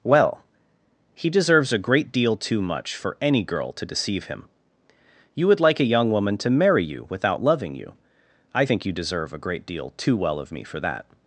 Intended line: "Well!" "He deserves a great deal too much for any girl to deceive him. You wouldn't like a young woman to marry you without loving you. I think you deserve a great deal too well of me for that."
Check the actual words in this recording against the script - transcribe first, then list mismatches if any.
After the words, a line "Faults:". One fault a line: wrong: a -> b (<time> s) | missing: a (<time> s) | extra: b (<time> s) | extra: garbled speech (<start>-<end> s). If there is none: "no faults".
"Well!" "He deserves a great deal too much for any girl to deceive him. You would like a young woman to marry you without loving you. I think you deserve a great deal too well of me for that."
Faults:
wrong: wouldn't -> would (5.5 s)